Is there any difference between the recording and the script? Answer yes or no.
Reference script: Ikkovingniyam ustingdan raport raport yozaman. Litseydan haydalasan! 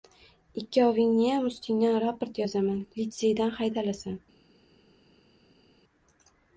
yes